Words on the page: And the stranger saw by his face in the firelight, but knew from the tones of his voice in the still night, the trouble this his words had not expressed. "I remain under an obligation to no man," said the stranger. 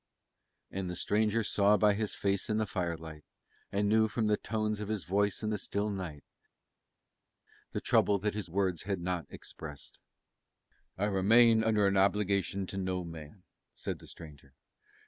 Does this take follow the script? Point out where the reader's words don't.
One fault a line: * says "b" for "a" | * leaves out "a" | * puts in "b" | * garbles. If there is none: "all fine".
* says "and" for "but"
* says "that" for "this"